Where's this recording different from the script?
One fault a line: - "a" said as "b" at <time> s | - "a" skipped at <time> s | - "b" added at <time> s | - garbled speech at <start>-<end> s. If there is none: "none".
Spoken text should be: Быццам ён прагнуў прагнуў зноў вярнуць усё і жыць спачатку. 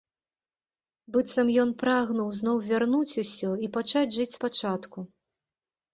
- "прагнуў" skipped at 2.3 s
- "пачаць" added at 3.8 s